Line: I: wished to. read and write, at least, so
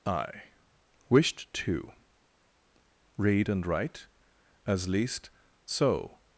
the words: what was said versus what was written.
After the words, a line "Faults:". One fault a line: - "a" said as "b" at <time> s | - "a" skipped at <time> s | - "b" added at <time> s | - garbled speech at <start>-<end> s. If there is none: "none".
I: wished to. read and write, as least, so
Faults:
- "at" said as "as" at 4.6 s